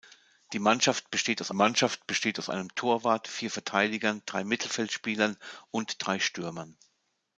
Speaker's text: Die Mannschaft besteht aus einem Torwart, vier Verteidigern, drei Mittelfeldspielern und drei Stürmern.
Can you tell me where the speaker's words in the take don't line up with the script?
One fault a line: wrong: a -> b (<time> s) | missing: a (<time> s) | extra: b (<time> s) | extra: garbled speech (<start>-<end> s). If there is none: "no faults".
extra: Mannschaft besteht aus (1.5 s)